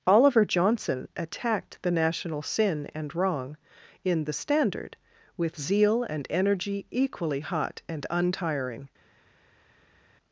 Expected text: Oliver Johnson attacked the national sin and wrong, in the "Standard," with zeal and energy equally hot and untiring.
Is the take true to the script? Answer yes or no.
yes